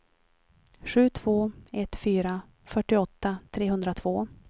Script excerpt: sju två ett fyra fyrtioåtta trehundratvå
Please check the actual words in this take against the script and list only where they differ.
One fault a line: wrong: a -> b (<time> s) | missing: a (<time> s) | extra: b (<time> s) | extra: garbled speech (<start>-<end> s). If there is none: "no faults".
no faults